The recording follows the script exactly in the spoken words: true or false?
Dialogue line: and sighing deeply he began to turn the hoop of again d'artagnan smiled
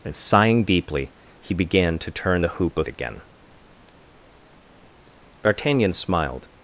true